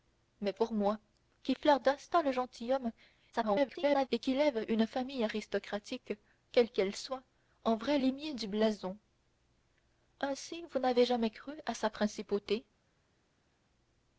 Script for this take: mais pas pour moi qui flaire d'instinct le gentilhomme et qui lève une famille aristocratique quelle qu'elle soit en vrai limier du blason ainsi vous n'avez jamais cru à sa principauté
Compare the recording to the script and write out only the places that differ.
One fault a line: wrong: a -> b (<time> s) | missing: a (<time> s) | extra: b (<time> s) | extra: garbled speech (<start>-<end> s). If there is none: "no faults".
missing: pas (0.5 s)
extra: garbled speech (3.3-4.1 s)